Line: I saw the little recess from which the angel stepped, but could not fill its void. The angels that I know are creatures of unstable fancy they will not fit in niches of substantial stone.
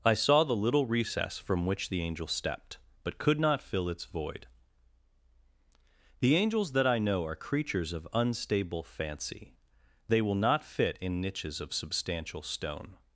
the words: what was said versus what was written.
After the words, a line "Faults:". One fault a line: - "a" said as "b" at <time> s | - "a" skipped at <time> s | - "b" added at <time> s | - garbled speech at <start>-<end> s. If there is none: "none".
I saw the little recess from which the angel stepped, but could not fill its void. The angels that I know are creatures of unstable fancy they will not fit in niches of substantial stone.
Faults:
none